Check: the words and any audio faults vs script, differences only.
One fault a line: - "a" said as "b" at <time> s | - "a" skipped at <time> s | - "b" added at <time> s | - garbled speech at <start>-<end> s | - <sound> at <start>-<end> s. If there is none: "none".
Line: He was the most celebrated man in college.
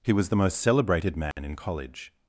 - dropout at 1.3-1.4 s